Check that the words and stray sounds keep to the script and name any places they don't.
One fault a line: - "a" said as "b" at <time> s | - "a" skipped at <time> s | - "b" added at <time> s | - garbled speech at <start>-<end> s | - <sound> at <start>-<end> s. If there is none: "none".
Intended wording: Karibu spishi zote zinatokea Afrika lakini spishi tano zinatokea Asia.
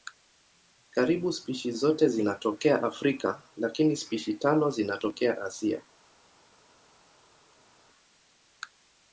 none